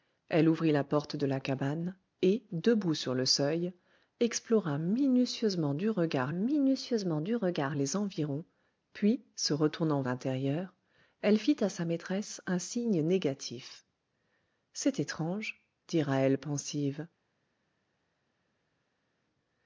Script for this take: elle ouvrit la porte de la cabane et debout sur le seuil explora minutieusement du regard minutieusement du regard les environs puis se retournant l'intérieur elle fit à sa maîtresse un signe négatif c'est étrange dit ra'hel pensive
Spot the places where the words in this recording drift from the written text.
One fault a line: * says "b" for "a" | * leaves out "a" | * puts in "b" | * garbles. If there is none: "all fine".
all fine